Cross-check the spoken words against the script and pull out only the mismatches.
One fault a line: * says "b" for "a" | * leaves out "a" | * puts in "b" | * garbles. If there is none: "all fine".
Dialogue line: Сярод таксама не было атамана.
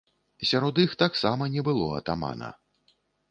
* puts in "іх"